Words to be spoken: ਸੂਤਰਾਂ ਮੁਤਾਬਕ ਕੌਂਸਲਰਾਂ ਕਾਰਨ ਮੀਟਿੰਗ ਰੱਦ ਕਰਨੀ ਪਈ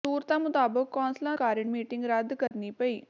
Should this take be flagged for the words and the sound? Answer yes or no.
yes